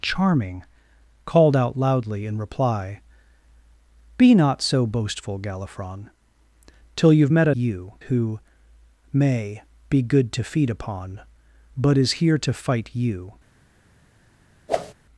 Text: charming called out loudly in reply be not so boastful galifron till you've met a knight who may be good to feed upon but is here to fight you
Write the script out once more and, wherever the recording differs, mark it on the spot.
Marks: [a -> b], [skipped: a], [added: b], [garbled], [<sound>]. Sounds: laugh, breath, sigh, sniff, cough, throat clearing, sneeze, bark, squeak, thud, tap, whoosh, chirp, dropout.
charming called out loudly in reply be not so boastful galifron till you've met a [knight -> you] who may be good to feed upon but is here to fight you [whoosh]